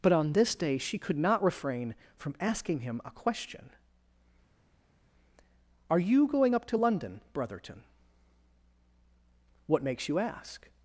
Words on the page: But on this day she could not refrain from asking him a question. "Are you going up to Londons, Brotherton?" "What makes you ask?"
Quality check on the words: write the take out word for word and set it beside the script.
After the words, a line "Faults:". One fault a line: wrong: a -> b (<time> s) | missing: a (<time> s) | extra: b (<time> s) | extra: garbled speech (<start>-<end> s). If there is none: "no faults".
But on this day she could not refrain from asking him a question. "Are you going up to London, Brotherton?" "What makes you ask?"
Faults:
wrong: Londons -> London (6.8 s)